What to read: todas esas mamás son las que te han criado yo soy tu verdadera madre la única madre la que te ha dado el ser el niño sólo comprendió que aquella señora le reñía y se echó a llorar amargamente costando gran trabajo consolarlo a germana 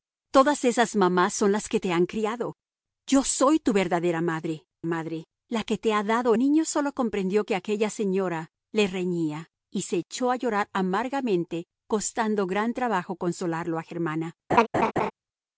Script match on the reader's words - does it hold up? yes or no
no